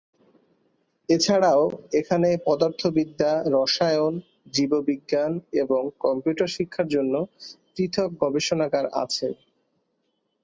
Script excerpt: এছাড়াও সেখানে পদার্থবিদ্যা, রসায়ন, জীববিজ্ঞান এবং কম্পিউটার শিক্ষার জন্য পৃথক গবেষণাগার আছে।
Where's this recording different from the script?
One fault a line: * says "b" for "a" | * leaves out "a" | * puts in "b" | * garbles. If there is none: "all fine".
* says "এখানে" for "সেখানে"